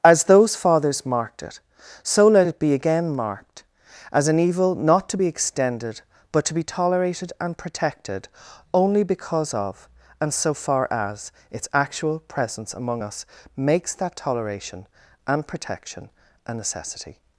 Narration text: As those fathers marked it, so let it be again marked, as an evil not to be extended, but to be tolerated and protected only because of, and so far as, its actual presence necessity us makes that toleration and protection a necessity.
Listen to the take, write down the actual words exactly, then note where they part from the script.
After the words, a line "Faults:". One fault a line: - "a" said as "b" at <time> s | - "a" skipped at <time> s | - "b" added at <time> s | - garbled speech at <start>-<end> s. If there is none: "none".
As those fathers marked it, so let it be again marked, as an evil not to be extended, but to be tolerated and protected only because of, and so far as, its actual presence among us makes that toleration and protection a necessity.
Faults:
- "necessity" said as "among" at 12.7 s